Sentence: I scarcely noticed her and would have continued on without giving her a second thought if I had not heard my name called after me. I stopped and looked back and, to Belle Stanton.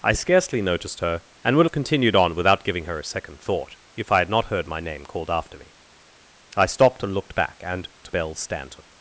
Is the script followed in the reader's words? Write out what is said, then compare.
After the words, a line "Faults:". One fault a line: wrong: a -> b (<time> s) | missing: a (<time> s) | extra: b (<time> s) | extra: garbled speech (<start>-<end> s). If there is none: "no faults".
I scarcely noticed her and would have continued on without giving her a second thought if I had not heard my name called after me. I stopped and looked back and, to Belle Stanton.
Faults:
no faults